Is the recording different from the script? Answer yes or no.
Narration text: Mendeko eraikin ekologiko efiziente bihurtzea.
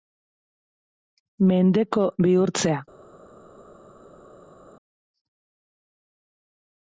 yes